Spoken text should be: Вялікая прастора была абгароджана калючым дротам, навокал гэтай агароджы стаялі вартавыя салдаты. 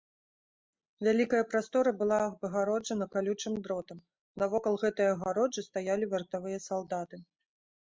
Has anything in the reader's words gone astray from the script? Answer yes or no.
no